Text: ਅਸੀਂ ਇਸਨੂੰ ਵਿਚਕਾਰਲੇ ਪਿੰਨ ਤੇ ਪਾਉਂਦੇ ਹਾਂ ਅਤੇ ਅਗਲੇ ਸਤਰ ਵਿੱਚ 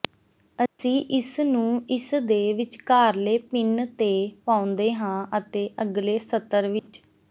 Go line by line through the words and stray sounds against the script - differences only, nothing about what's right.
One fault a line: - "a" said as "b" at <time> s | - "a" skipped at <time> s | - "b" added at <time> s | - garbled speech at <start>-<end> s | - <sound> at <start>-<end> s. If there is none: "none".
- dropout at 0.7-0.8 s
- "ਇਸਦੇ" added at 1.9 s
- dropout at 6.8-6.9 s